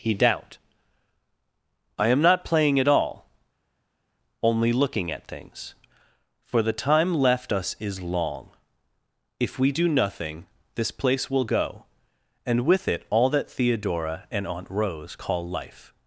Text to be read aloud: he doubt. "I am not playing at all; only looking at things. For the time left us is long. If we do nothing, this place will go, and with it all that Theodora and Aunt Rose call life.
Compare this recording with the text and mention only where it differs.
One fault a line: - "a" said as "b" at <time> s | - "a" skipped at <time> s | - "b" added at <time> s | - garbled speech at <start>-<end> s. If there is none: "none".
none